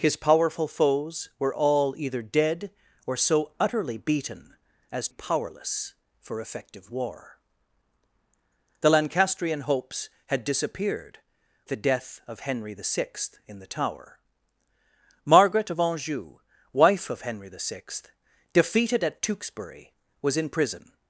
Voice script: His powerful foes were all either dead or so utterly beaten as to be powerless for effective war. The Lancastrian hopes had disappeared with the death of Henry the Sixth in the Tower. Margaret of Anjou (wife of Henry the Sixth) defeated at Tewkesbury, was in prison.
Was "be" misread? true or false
true